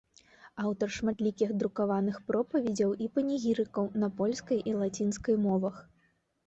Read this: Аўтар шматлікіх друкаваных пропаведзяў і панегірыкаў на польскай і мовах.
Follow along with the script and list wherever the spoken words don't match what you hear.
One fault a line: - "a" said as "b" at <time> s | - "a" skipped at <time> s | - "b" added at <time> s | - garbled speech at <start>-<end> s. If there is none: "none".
- "лацінскай" added at 4.8 s